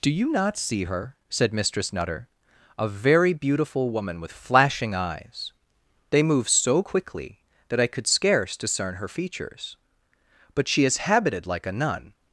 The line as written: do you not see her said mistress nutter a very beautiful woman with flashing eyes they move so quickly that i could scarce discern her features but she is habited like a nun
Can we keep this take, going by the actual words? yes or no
yes